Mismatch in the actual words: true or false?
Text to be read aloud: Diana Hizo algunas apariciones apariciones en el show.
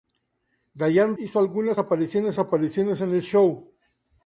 false